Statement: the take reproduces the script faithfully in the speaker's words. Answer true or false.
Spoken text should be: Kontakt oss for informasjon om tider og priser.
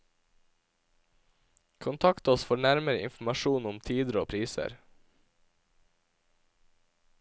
false